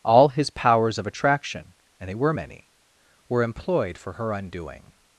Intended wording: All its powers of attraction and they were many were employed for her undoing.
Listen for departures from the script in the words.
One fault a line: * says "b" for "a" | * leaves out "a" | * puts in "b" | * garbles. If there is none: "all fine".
* says "his" for "its"